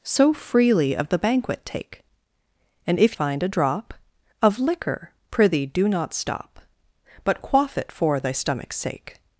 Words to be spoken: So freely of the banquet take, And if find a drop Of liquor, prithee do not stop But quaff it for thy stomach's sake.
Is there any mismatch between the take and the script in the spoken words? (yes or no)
no